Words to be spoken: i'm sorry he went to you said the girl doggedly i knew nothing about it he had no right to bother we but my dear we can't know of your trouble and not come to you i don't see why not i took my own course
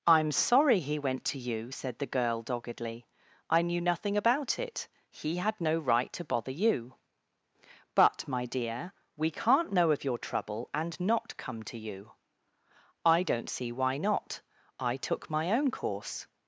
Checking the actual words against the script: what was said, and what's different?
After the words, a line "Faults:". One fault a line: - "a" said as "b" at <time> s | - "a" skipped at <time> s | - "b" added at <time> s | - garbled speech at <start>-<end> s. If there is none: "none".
i'm sorry he went to you said the girl doggedly i knew nothing about it he had no right to bother you but my dear we can't know of your trouble and not come to you i don't see why not i took my own course
Faults:
- "we" said as "you" at 6.5 s